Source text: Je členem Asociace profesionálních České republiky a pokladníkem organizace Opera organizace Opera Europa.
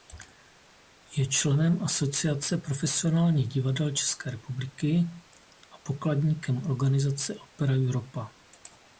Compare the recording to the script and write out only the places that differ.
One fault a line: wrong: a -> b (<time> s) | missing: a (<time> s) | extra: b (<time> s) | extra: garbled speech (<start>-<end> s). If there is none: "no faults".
extra: divadel (3.5 s)
missing: organizace Opera (7.7 s)